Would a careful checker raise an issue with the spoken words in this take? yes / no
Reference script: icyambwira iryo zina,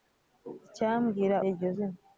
no